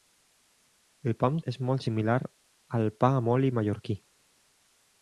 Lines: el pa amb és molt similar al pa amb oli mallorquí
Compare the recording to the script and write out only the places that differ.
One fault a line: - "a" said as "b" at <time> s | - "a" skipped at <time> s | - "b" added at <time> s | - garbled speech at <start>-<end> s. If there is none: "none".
none